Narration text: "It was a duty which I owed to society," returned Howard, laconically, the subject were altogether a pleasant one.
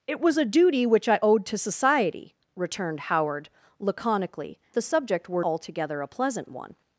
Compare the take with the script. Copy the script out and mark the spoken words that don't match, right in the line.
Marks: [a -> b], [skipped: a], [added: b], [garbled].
"It was a duty which I owed to society," returned Howard, laconically, the subject were altogether a pleasant one.